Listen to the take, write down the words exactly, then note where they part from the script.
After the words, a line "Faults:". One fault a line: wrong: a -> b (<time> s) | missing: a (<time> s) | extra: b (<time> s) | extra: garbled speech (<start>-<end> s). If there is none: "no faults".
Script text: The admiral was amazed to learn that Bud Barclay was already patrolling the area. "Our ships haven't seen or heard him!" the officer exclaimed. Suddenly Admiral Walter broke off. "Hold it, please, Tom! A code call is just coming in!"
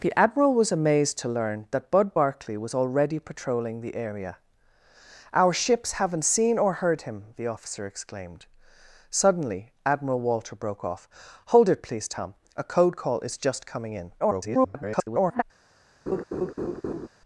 The admiral was amazed to learn that Bud Barclay was already patrolling the area. "Our ships haven't seen or heard him!" the officer exclaimed. Suddenly Admiral Walter broke off. "Hold it, please, Tom! A code call is just coming in!" [garbled]
Faults:
extra: garbled speech (14.2-15.4 s)